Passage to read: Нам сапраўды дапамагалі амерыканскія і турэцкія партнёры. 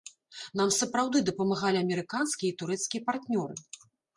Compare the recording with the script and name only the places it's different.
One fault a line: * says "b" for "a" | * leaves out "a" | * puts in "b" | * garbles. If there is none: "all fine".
all fine